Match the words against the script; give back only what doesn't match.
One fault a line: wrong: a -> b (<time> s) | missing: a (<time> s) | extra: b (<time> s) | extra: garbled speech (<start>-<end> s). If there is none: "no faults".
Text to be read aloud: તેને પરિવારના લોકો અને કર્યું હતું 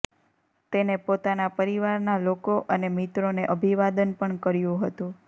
extra: પોતાના (1.0 s)
extra: મિત્રોને અભિવાદન પણ (3.0 s)